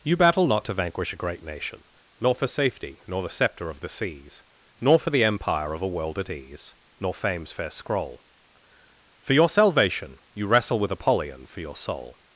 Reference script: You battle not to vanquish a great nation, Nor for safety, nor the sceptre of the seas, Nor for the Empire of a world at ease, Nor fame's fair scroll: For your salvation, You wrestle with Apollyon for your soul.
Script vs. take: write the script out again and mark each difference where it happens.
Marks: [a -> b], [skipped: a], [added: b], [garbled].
You battle not to vanquish a great nation, Nor for safety, nor the sceptre of the seas, Nor for the Empire of a world at ease, Nor fame's fair scroll: For your salvation, You wrestle with Apollyon for your soul.